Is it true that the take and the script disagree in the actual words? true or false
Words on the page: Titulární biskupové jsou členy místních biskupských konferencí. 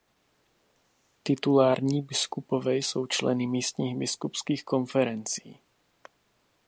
false